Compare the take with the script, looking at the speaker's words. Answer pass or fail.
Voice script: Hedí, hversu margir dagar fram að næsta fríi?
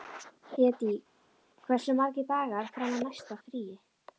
pass